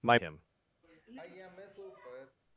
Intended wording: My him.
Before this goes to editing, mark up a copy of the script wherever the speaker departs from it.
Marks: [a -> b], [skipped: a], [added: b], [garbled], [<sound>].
My him. [sigh]